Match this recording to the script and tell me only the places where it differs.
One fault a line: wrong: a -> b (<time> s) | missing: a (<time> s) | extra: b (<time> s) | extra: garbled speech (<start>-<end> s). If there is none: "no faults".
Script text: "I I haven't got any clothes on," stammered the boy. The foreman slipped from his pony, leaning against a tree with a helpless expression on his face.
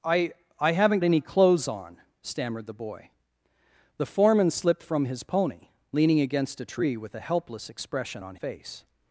missing: got (1.0 s)
missing: his (8.4 s)